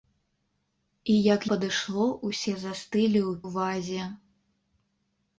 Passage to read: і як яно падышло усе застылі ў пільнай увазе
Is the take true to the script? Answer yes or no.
no